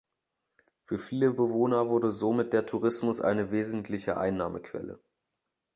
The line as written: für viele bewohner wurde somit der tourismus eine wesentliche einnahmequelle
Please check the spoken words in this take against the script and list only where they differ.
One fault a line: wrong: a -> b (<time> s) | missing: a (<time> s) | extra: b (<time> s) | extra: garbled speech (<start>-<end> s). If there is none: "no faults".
no faults